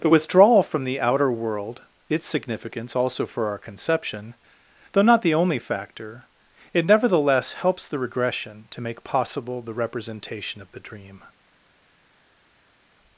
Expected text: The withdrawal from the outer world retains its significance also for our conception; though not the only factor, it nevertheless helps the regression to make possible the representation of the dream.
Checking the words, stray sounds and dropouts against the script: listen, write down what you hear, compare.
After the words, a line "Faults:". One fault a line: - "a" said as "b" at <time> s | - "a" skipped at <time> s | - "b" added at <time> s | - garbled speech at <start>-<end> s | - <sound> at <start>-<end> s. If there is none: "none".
The withdrawal from the outer world its significance also for our conception; though not the only factor, it nevertheless helps the regression to make possible the representation of the dream.
Faults:
- "retains" skipped at 1.8 s